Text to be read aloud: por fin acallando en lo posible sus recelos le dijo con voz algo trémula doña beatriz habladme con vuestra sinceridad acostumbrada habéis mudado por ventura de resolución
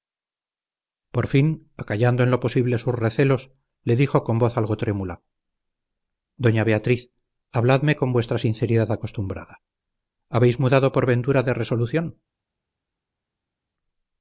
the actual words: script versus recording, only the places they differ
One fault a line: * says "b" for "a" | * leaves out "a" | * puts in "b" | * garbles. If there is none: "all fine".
all fine